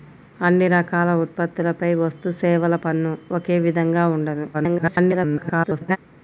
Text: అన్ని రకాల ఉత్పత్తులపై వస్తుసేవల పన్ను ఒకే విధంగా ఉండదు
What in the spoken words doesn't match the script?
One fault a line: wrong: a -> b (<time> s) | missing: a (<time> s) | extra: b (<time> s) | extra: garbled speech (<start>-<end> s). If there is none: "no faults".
extra: garbled speech (4.5-6.0 s)